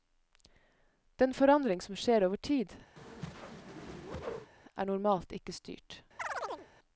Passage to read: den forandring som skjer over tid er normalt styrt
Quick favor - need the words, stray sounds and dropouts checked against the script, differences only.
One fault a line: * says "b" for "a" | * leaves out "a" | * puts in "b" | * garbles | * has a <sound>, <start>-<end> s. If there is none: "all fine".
* has a whoosh, 3.0-4.5 s
* puts in "ikke"
* has a chirp, 6.2-6.7 s